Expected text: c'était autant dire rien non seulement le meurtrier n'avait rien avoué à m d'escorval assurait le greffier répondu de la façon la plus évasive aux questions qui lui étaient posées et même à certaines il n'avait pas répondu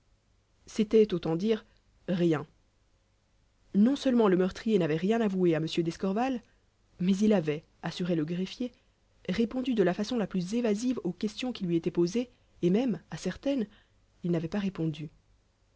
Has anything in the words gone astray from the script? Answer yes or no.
yes